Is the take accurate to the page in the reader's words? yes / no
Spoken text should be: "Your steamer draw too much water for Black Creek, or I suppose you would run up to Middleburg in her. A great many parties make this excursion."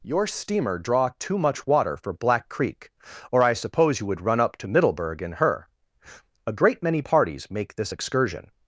yes